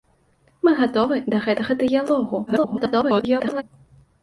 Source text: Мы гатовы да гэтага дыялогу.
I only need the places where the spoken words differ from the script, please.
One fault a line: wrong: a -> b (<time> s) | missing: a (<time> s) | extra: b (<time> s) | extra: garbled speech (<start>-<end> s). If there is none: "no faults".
extra: garbled speech (2.5-3.6 s)